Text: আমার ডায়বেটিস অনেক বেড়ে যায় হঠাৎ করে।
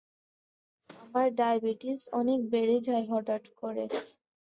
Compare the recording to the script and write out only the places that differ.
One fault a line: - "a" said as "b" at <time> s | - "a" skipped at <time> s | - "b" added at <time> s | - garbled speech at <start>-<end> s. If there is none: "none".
none